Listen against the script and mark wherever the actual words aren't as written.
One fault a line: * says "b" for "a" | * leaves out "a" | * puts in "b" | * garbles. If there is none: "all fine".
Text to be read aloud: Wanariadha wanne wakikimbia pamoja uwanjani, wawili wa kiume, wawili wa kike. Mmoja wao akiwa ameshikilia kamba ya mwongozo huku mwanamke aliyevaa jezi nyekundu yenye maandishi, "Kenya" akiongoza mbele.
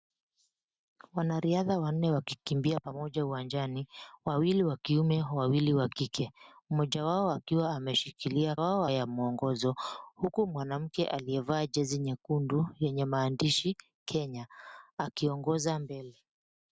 * says "wao" for "kamba"